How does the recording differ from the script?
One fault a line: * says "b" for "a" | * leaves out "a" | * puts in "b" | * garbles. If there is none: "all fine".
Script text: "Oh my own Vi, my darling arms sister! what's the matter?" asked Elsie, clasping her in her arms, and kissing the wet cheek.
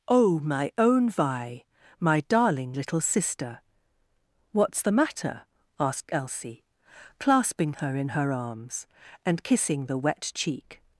* says "little" for "arms"